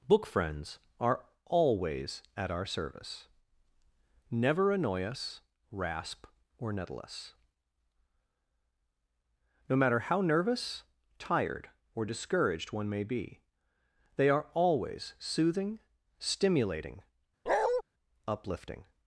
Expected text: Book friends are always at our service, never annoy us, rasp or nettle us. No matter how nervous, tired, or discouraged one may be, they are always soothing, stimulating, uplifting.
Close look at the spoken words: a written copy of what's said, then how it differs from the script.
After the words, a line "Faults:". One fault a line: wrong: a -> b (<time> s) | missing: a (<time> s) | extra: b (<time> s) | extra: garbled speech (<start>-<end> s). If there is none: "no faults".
Book friends are always at our service, never annoy us, rasp or nettle us. No matter how nervous, tired, or discouraged one may be, they are always soothing, stimulating, uplifting.
Faults:
no faults